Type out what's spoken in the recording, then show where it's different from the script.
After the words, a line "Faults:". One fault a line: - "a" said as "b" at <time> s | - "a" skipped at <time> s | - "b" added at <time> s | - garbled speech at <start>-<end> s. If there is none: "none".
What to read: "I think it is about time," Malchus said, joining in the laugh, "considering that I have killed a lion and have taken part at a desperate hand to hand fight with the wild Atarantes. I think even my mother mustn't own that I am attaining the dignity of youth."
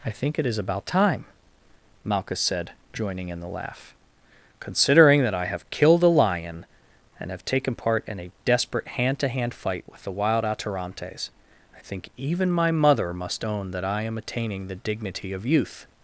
"I think it is about time," Malchus said, joining in the laugh, "considering that I have killed a lion and have taken part in a desperate hand to hand fight with the wild Atarantes. I think even my mother must own that I am attaining the dignity of youth."
Faults:
- "at" said as "in" at 8.1 s
- "mustn't" said as "must" at 13.1 s